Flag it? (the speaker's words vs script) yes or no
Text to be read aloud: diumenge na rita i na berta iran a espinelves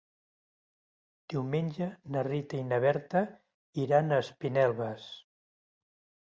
no